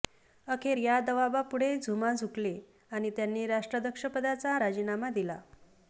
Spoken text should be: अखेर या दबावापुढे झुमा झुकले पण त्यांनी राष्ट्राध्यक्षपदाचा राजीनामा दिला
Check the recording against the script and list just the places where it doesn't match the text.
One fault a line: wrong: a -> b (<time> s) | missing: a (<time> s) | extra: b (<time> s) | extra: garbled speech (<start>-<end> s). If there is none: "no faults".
wrong: पण -> आणि (2.9 s)